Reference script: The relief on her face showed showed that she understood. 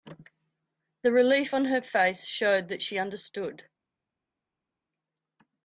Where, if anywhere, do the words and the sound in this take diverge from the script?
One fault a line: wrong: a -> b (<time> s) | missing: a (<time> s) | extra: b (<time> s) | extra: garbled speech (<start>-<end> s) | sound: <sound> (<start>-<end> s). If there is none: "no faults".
missing: showed (2.7 s)